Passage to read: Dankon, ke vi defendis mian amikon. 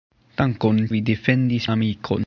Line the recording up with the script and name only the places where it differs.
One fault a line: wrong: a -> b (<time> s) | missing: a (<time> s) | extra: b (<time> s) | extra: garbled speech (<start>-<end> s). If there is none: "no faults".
missing: ke (0.9 s)
missing: mian (1.7 s)